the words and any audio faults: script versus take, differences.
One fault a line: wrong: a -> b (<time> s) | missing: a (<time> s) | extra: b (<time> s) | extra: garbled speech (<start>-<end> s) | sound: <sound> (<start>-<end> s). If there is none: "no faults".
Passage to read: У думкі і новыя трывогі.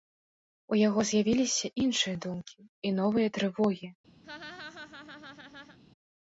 extra: яго з'явіліся іншыя (0.9 s)
sound: laugh (4.2-5.8 s)